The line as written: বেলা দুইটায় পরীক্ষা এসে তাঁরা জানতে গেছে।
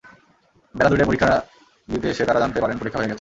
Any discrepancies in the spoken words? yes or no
yes